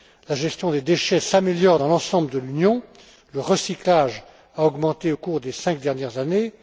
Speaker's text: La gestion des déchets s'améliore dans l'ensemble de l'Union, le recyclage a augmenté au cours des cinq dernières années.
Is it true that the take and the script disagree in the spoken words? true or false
false